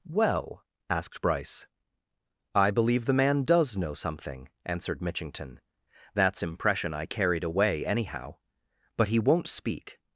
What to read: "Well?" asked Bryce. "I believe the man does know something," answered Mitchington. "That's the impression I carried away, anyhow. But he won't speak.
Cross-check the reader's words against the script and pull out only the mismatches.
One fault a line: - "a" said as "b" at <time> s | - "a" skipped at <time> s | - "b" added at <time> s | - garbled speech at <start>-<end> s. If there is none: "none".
- "the" skipped at 6.4 s